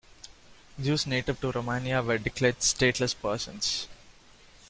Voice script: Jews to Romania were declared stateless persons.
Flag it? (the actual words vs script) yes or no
yes